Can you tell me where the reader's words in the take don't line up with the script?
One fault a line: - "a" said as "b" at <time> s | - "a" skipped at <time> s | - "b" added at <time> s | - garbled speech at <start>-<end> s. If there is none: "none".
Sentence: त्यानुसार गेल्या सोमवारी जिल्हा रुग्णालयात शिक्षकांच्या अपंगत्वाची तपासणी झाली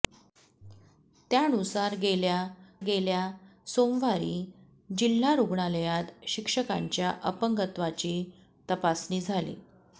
- "गेल्या" added at 2.8 s